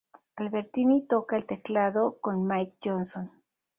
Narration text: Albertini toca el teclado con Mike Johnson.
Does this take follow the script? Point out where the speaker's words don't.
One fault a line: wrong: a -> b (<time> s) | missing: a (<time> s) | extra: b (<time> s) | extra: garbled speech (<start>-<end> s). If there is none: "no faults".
no faults